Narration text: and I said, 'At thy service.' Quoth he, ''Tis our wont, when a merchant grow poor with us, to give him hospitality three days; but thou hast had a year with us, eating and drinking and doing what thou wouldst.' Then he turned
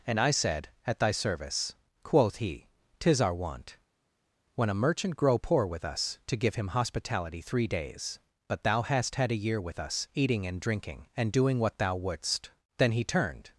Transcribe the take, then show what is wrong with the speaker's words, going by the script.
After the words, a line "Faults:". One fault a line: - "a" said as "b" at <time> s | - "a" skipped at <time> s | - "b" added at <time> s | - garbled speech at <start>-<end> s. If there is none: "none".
and I said, 'At thy service.' Quoth he, ''Tis our wont, when a merchant grow poor with us, to give him hospitality three days; but thou hast had a year with us, eating and drinking and doing what thou wouldst.' Then he turned
Faults:
none